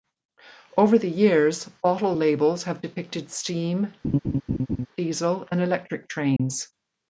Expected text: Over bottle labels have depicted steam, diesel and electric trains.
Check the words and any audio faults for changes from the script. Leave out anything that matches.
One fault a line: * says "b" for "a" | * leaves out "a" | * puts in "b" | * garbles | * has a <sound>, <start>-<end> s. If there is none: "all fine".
* puts in "the years"
* has a laugh, 4.0-4.9 s
* has a dropout, 6.4-6.4 s